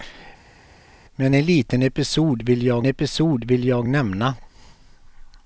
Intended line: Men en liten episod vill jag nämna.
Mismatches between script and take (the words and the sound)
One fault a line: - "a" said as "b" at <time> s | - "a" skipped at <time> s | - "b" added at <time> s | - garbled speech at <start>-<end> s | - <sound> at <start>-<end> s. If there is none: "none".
- "episod vill jag" added at 2.9 s